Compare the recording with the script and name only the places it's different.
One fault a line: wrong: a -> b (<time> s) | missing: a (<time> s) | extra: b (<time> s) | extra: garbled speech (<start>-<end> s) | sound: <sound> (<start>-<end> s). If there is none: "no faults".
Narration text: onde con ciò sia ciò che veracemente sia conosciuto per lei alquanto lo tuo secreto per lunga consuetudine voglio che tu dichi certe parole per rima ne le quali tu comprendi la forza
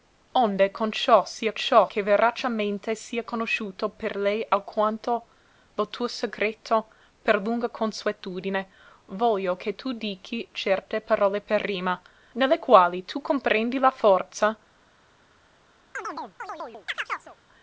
sound: chirp (15.9-17.4 s)